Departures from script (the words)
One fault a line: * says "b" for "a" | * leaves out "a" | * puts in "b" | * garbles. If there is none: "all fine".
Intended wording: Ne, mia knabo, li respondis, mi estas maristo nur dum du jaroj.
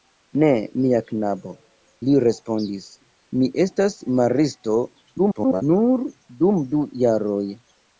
* garbles